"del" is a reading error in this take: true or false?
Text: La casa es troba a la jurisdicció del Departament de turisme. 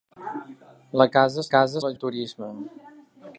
true